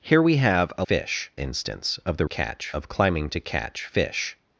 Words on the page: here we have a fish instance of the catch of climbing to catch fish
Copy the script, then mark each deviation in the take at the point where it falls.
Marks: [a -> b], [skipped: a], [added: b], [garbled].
here we have a fish instance of the catch of climbing to catch fish